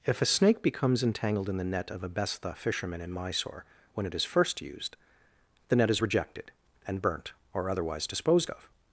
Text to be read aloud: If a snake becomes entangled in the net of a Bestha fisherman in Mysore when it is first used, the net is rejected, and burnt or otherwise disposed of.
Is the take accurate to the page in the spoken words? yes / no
yes